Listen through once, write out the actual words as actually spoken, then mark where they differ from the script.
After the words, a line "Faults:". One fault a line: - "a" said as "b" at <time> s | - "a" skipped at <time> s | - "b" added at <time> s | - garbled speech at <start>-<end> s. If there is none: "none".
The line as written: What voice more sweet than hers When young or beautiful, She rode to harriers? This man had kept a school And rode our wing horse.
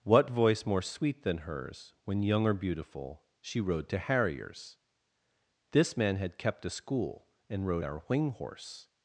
What voice more sweet than hers When young or beautiful, She rode to harriers? This man had kept a school And rode our wing horse.
Faults:
none